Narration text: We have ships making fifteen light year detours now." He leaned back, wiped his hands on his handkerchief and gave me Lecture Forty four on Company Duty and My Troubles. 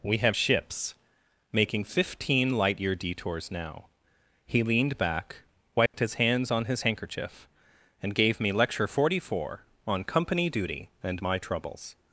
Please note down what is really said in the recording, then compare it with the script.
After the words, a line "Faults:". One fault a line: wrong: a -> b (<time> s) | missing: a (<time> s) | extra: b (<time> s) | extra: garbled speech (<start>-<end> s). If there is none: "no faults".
We have ships making fifteen light year detours now." He leaned back, wiped his hands on his handkerchief and gave me Lecture Forty four on Company Duty and My Troubles.
Faults:
no faults